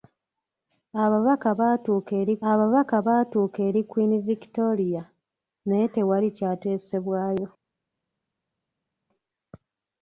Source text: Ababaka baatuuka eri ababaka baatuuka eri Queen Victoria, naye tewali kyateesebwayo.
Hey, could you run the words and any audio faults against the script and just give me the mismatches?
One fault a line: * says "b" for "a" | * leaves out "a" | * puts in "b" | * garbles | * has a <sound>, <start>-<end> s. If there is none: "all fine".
all fine